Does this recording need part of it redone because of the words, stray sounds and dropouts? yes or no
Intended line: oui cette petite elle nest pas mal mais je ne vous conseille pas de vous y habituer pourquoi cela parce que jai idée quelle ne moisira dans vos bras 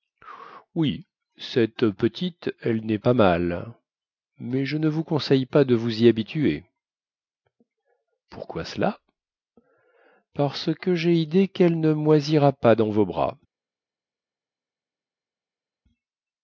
yes